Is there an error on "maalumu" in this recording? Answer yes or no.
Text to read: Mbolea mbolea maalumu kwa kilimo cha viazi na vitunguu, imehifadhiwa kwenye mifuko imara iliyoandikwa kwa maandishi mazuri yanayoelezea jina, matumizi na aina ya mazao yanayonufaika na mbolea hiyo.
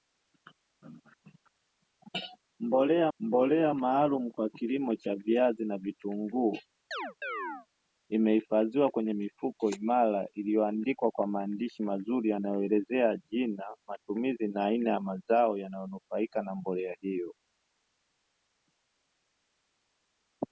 no